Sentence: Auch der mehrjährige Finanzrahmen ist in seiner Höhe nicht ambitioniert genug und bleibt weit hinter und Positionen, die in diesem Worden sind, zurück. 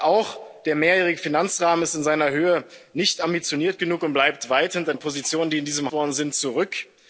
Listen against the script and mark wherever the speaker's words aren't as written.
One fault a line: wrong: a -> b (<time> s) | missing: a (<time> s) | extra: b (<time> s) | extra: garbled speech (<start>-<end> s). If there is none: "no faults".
no faults